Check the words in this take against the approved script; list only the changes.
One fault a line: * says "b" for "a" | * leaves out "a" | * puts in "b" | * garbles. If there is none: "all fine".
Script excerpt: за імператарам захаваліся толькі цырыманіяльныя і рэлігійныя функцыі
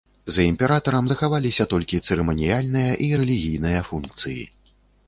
all fine